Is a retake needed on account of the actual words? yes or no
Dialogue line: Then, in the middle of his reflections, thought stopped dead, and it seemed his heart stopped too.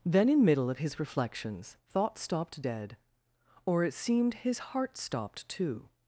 yes